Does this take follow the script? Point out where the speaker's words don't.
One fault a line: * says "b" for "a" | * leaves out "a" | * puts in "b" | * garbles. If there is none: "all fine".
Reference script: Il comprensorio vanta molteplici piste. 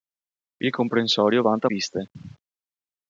* leaves out "molteplici"